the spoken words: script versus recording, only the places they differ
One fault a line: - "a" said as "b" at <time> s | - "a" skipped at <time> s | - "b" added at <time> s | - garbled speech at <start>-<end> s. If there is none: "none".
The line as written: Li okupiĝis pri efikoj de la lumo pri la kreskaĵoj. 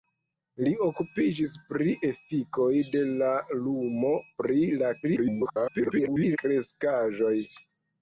- garbled speech at 5.0-6.4 s